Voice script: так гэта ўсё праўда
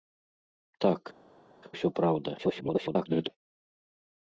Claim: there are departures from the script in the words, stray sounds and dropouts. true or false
true